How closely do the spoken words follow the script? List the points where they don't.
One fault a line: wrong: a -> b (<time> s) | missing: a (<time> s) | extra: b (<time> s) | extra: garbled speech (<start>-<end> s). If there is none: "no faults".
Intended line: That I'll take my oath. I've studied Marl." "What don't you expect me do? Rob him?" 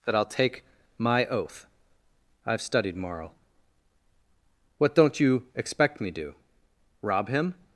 no faults